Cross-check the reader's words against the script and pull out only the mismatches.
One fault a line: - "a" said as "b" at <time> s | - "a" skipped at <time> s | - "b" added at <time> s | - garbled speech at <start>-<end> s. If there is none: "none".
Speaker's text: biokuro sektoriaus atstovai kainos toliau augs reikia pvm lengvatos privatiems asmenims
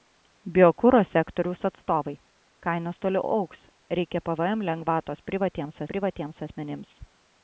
- "privatiems" added at 5.9 s